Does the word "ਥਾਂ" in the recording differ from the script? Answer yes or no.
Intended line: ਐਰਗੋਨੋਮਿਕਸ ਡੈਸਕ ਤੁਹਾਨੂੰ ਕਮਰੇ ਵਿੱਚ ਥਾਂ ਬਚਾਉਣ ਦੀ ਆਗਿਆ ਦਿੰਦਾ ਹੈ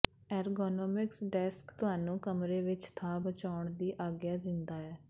no